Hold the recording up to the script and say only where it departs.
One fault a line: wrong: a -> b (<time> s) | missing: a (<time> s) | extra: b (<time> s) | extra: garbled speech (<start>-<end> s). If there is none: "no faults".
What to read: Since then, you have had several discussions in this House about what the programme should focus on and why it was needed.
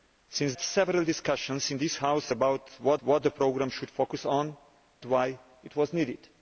missing: then you have (0.6 s)
extra: what (3.0 s)
missing: and (4.6 s)